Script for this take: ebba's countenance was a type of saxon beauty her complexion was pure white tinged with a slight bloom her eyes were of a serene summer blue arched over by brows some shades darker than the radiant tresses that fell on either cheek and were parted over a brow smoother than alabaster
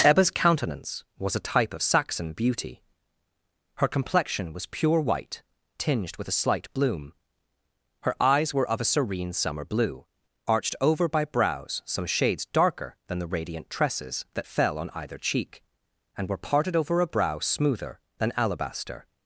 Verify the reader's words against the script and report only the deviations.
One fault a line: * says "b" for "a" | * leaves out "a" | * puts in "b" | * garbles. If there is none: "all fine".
all fine